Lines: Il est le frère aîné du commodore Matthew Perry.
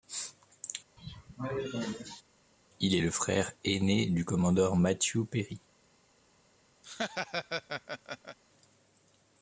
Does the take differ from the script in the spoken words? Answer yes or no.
no